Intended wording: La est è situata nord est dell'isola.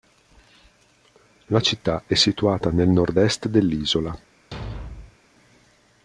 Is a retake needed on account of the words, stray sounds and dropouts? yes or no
yes